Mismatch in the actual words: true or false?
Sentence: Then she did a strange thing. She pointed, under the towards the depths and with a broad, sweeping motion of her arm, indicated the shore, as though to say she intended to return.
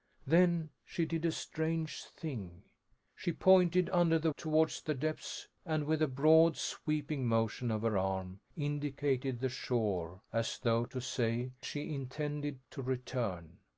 false